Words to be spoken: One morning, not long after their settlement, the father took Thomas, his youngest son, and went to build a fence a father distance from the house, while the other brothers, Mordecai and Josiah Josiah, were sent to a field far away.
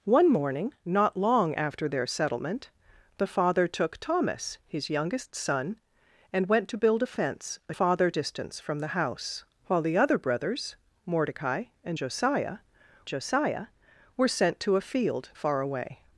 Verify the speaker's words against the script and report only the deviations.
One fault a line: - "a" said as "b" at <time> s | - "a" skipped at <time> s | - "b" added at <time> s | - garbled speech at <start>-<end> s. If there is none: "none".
none